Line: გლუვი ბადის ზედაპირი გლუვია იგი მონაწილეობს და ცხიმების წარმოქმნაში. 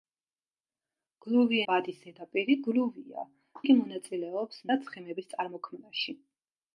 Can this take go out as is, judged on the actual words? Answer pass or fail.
pass